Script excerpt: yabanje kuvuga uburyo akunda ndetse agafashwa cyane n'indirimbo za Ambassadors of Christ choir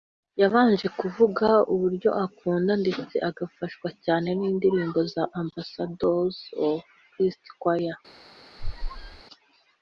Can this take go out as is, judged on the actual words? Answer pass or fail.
pass